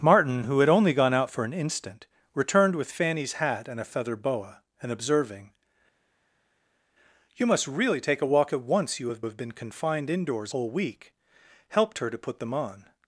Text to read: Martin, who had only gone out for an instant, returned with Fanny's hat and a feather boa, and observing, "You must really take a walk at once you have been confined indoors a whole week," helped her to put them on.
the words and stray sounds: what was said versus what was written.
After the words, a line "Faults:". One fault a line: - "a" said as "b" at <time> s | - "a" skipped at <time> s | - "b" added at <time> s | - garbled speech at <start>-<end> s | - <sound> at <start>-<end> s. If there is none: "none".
Martin, who had only gone out for an instant, returned with Fanny's hat and a feather boa, and observing, "You must really take a walk at once you have have been confined indoors whole week," helped her to put them on.
Faults:
- "have" added at 9.2 s
- "a" skipped at 10.5 s